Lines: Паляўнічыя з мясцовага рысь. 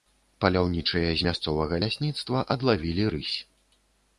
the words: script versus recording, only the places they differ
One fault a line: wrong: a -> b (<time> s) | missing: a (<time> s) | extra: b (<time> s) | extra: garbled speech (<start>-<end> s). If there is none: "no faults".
extra: лясніцтва адлавілі (1.8 s)